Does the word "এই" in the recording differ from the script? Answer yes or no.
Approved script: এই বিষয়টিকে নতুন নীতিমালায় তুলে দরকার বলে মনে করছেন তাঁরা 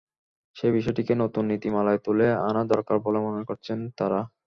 yes